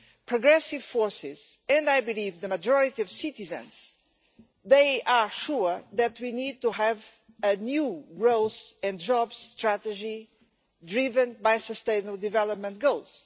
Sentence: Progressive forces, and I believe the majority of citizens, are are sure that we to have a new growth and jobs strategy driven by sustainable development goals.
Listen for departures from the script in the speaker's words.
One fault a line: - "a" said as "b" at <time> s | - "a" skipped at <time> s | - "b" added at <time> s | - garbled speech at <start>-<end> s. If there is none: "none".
- "are" skipped at 5.3 s
- "need" added at 6.3 s